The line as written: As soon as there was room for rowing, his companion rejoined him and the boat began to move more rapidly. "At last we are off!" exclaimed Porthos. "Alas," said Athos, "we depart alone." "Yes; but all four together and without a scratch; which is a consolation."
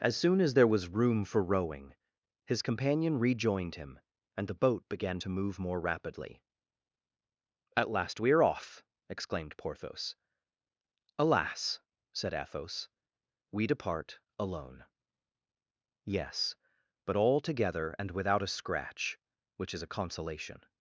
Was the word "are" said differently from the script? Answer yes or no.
no